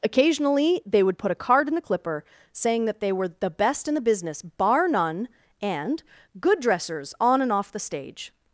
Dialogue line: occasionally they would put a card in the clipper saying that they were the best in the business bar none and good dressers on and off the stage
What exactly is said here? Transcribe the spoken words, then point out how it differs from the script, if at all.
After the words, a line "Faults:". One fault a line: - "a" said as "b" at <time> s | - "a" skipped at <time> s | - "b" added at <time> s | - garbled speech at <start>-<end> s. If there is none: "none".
occasionally they would put a card in the clipper saying that they were the best in the business bar none and good dressers on and off the stage
Faults:
none